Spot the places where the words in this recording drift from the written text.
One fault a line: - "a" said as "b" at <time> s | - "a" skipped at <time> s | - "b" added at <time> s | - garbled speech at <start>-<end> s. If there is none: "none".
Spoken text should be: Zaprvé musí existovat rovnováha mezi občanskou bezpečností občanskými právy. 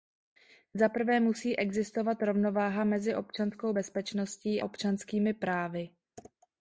none